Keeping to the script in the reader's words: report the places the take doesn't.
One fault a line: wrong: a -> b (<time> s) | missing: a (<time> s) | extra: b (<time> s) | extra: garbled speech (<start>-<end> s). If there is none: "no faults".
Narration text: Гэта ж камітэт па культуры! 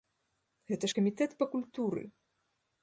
no faults